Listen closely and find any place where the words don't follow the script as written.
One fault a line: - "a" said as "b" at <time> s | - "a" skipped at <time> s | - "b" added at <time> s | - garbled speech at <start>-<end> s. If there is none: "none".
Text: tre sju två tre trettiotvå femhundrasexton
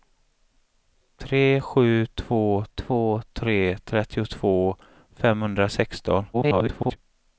- "två" added at 2.7 s
- garbled speech at 6.3-7.0 s